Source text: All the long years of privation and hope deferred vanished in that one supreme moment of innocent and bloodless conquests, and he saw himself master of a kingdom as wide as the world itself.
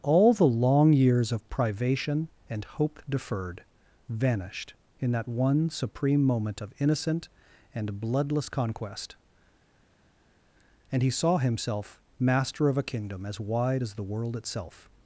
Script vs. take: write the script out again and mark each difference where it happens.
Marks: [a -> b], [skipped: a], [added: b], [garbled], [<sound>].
All the long years of privation and hope deferred vanished in that one supreme moment of innocent and bloodless [conquests, -> conquest] and he saw himself master of a kingdom as wide as the world itself.